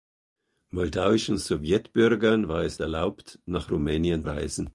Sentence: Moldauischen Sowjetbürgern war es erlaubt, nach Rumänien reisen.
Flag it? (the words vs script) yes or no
no